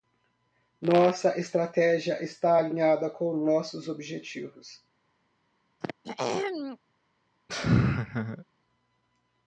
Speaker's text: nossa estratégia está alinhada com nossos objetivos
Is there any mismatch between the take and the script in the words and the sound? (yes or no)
yes